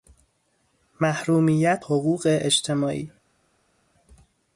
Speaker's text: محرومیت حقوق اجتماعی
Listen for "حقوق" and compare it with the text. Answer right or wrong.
right